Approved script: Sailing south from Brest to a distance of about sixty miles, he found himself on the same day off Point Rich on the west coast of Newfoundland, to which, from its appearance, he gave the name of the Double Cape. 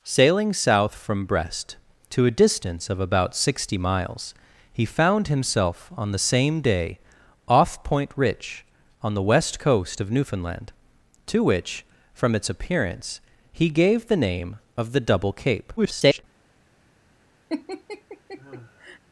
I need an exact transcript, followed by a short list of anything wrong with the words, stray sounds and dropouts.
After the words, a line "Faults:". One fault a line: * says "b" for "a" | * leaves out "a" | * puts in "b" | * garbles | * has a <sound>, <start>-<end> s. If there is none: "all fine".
Sailing south from Brest to a distance of about sixty miles, he found himself on the same day off Point Rich on the west coast of Newfoundland, to which, from its appearance, he gave the name of the Double Cape. [garbled]
Faults:
* garbles
* has a laugh, 17.5-19.0 s